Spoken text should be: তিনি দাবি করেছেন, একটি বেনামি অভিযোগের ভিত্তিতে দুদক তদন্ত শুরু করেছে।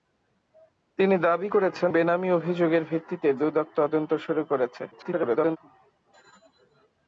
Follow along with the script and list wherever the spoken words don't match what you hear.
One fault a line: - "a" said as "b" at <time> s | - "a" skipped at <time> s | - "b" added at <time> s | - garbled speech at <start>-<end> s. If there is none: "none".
- "একটি" skipped at 1.9 s
- garbled speech at 4.9-5.6 s